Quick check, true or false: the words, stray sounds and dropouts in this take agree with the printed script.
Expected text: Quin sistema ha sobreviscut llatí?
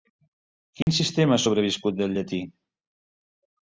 false